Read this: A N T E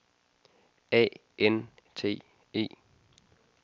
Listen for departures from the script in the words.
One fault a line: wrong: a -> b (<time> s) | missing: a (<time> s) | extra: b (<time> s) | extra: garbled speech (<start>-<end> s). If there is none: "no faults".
no faults